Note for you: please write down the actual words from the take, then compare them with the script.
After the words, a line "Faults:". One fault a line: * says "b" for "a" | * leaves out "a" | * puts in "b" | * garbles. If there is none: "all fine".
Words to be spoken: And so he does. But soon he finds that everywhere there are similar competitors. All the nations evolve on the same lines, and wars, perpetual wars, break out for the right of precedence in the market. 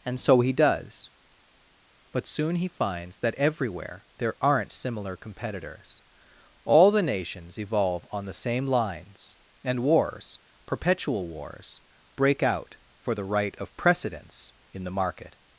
And so he does. But soon he finds that everywhere there aren't similar competitors. All the nations evolve on the same lines, and wars, perpetual wars, break out for the right of precedence in the market.
Faults:
* says "aren't" for "are"